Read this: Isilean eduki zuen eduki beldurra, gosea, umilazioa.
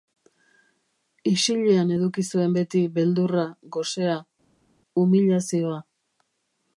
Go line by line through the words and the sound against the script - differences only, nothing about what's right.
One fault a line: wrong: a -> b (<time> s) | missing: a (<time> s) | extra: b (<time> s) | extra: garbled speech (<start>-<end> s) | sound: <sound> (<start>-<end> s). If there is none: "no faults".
wrong: eduki -> beti (2.6 s)